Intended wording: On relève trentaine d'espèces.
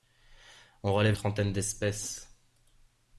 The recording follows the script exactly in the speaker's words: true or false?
true